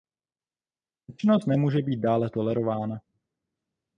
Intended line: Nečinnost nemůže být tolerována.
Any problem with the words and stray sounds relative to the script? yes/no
yes